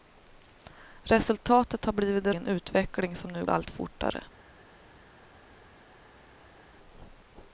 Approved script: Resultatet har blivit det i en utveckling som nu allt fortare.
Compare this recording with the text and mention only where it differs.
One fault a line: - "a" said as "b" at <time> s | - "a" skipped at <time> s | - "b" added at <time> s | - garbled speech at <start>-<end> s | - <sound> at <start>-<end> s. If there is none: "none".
none